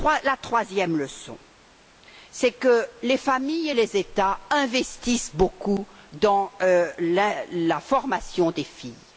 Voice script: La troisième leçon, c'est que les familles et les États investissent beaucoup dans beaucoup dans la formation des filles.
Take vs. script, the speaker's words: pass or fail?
fail